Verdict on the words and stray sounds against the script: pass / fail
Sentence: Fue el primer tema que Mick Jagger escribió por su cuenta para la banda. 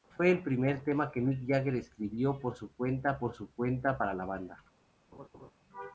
fail